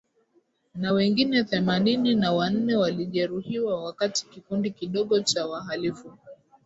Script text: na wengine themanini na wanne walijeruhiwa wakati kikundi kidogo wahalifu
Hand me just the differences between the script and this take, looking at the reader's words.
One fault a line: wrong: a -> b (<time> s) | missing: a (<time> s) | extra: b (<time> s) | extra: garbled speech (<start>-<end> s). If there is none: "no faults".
extra: cha (5.2 s)